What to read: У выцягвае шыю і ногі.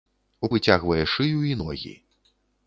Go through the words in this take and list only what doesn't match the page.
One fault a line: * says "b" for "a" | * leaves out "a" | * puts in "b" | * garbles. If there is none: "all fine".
all fine